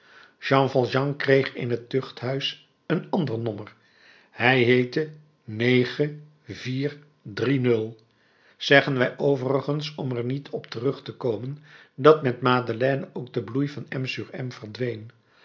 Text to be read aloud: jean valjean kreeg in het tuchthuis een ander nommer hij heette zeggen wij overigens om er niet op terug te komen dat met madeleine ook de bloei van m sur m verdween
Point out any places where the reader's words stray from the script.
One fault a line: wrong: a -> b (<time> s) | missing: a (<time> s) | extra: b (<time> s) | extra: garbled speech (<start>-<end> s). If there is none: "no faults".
no faults